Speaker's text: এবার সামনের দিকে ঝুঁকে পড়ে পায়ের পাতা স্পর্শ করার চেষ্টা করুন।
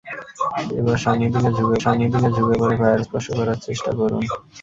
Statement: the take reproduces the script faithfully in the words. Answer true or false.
false